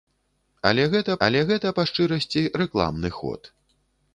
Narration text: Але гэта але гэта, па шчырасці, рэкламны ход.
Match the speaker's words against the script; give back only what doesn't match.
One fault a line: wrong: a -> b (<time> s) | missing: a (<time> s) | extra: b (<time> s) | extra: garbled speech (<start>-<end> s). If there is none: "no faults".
no faults